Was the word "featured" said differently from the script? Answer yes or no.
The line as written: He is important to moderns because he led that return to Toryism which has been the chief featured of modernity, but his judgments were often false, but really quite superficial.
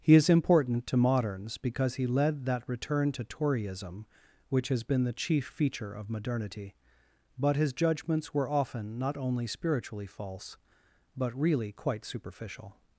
yes